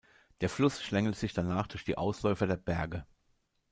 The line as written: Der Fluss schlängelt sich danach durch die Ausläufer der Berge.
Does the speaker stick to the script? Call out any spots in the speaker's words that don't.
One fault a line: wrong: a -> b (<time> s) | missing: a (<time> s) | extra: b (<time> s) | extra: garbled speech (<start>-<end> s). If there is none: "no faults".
no faults